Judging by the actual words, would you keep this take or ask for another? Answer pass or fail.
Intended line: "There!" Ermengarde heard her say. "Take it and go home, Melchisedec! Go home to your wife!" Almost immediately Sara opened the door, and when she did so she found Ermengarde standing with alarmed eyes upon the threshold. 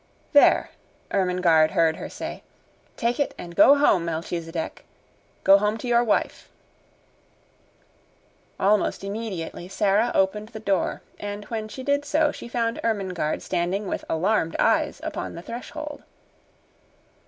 pass